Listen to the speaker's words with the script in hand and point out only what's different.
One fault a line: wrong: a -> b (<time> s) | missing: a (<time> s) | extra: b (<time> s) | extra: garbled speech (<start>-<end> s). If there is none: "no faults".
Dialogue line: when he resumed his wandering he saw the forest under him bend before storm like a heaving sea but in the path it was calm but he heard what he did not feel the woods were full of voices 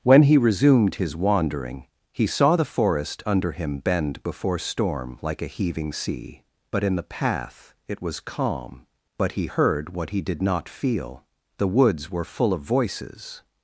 no faults